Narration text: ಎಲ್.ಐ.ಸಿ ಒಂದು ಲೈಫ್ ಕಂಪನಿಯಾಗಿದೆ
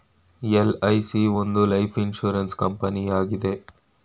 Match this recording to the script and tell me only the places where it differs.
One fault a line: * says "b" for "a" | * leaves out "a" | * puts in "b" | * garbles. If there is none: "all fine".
* puts in "ಇನ್ಸೂರೆನ್ಸ್"